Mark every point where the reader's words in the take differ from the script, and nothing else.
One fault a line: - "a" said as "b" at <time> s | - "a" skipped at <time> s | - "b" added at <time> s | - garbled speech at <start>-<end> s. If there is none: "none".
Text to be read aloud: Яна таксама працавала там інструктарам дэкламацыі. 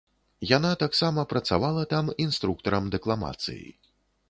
none